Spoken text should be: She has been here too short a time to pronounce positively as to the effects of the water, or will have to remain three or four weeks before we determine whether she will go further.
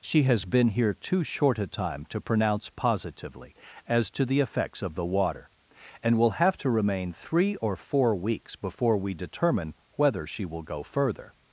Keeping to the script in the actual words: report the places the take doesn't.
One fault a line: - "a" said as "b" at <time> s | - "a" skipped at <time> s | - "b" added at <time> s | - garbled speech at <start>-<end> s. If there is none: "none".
- "or" said as "and" at 6.0 s